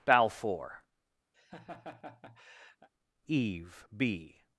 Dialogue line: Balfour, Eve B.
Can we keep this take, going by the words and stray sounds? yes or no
no